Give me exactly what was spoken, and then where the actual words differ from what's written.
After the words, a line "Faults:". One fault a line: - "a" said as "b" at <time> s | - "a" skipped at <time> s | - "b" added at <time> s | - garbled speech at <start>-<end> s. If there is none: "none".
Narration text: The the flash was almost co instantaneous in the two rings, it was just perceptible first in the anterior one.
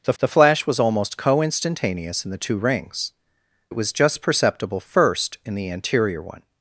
The the flash was almost co instantaneous in the two rings, it was just perceptible first in the anterior one.
Faults:
none